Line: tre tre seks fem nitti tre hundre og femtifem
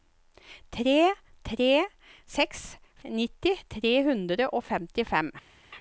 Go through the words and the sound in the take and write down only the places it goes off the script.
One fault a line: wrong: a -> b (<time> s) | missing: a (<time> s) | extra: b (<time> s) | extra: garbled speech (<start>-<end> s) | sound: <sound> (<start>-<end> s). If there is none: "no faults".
missing: fem (2.6 s)